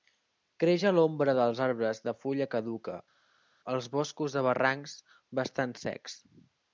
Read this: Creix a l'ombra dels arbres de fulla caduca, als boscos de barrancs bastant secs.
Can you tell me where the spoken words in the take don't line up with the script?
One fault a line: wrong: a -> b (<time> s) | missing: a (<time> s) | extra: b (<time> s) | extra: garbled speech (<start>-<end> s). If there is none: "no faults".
no faults